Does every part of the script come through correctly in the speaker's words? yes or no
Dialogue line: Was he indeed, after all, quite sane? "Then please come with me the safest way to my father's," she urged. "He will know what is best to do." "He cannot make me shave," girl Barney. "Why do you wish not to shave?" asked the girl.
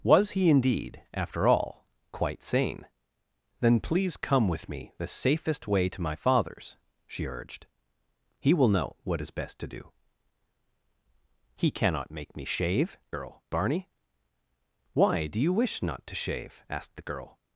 yes